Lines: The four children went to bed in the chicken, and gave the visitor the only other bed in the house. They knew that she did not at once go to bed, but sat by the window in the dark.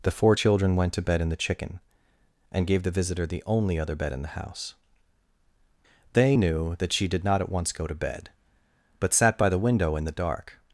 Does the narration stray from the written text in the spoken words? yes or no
no